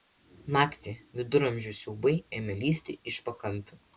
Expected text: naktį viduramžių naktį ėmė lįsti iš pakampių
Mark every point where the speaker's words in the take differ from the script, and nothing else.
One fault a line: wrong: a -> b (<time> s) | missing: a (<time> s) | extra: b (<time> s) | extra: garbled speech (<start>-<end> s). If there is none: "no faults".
wrong: naktį -> siaubai (1.8 s)